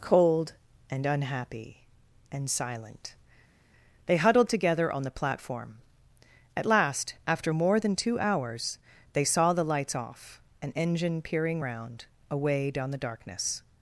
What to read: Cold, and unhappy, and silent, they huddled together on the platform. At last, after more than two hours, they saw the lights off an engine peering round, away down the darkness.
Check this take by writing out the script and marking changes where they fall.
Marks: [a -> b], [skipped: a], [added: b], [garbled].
Cold, and unhappy, and silent, they huddled together on the platform. At last, after more than two hours, they saw the lights off an engine peering round, away down the darkness.